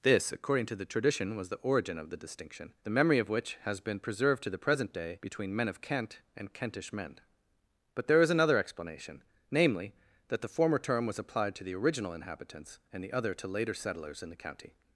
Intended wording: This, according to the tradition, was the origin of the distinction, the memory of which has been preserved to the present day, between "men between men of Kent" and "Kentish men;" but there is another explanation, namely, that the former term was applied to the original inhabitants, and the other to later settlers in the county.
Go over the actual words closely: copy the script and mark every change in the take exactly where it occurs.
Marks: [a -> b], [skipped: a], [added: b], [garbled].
This, according to the tradition, was the origin of the distinction, the memory of which has been preserved to the present day, between "men [skipped: between men] of Kent" and "Kentish men;" but there is another explanation, namely, that the former term was applied to the original inhabitants, and the other to later settlers in the county.